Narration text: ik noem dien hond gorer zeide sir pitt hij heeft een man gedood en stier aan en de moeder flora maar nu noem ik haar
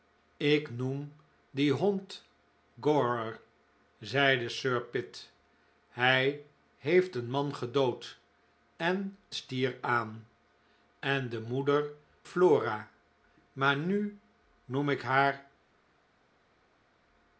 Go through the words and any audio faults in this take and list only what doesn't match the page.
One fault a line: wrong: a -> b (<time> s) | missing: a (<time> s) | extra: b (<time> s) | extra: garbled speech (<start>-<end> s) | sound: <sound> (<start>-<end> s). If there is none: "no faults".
no faults